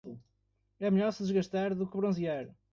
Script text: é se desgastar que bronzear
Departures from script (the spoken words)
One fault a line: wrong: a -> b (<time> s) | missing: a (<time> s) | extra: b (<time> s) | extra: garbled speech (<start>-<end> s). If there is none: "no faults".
extra: melhor (0.9 s)
extra: do (1.8 s)